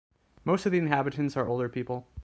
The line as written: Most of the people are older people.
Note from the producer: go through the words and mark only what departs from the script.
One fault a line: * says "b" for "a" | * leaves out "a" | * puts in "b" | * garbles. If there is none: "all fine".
* says "inhabitants" for "people"